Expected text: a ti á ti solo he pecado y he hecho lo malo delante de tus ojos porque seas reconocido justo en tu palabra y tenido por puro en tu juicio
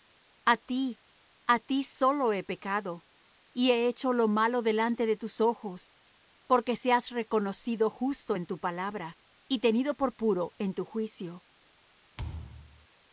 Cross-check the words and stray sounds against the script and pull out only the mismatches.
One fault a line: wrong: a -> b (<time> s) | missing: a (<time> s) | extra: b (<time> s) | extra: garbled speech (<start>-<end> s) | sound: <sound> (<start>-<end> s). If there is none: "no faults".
sound: thud (12.2-12.9 s)